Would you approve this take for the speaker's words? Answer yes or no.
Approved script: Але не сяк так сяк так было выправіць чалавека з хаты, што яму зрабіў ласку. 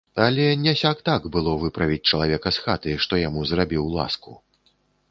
no